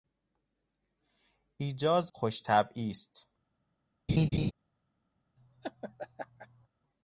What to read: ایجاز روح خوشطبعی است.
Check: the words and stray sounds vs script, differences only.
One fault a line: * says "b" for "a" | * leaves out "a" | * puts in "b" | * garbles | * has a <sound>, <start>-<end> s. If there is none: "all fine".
* leaves out "روح"
* has a laugh, 4.1-4.5 s
* has a laugh, 5.4-6.7 s